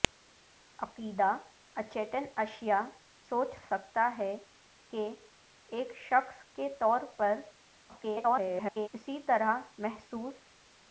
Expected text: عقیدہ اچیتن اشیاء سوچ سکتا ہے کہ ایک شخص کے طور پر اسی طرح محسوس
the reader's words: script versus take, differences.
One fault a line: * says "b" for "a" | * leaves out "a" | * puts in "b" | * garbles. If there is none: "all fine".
* garbles